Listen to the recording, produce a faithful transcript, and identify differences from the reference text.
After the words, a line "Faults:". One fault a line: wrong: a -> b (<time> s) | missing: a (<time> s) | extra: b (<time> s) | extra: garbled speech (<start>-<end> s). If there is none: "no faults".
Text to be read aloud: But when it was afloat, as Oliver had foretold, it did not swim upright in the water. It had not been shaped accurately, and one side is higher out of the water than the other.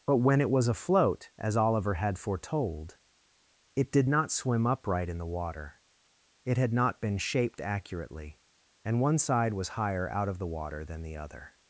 But when it was afloat, as Oliver had foretold, it did not swim upright in the water. It had not been shaped accurately, and one side was higher out of the water than the other.
Faults:
wrong: is -> was (9.5 s)